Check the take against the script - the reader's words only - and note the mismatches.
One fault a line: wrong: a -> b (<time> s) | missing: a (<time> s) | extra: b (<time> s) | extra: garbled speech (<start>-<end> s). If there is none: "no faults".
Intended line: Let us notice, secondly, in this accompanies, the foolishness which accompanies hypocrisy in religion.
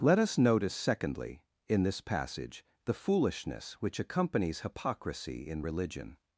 wrong: accompanies -> passage (2.0 s)